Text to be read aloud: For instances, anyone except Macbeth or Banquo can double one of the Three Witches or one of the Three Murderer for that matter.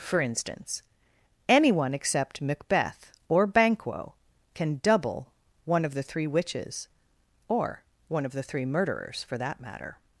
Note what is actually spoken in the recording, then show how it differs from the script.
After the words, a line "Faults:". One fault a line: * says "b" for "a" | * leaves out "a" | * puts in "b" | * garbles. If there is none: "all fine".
For instance, anyone except Macbeth or Banquo can double one of the Three Witches or one of the Three Murderers for that matter.
Faults:
* says "instance" for "instances"
* says "Murderers" for "Murderer"